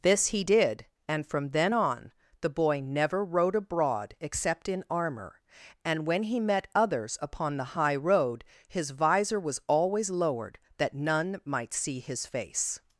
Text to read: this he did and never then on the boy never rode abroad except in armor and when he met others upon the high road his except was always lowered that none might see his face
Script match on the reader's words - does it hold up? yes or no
no